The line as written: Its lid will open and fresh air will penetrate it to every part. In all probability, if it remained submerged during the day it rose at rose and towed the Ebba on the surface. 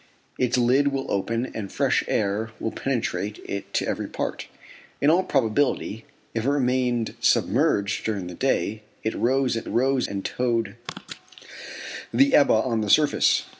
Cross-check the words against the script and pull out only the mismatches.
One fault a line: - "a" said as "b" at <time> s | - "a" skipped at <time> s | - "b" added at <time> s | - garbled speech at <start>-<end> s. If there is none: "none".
none